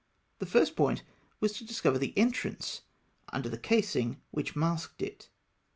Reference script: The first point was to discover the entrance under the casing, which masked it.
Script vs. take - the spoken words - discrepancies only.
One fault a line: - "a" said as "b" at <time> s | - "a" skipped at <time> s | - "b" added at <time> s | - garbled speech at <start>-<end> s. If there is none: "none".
none